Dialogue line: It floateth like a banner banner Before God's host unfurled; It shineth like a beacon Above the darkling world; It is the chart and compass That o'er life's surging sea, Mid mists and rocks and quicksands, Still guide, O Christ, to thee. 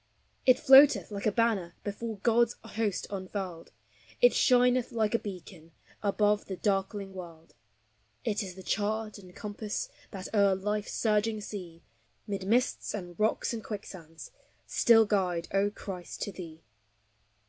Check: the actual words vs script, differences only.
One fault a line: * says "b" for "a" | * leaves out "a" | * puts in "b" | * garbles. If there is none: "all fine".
* leaves out "banner"